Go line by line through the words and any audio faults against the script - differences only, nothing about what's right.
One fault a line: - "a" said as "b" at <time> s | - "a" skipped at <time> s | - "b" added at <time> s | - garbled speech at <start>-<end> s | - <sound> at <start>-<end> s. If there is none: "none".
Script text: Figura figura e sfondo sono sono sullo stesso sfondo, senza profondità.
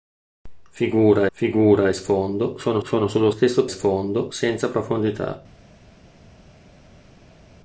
none